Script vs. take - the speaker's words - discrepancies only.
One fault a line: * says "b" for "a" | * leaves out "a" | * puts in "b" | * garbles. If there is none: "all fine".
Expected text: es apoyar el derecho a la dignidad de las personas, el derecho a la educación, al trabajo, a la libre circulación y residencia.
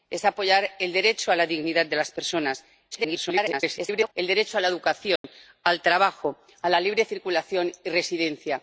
* garbles